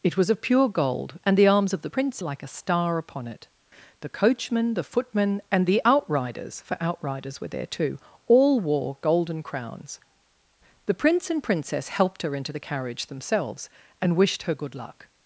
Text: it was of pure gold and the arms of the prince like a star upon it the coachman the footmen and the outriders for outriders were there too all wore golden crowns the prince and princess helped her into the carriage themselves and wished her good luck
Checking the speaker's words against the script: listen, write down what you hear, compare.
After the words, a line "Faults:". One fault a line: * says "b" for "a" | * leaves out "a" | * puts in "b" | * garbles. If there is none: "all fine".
it was of pure gold and the arms of the prince like a star upon it the coachman the footmen and the outriders for outriders were there too all wore golden crowns the prince and princess helped her into the carriage themselves and wished her good luck
Faults:
all fine